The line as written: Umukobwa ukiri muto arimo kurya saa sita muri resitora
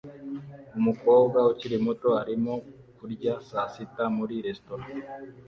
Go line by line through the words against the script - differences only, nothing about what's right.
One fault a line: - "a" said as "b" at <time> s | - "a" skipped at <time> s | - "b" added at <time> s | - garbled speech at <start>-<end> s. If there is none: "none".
none